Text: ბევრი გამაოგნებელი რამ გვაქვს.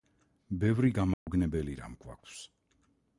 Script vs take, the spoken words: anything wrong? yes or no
no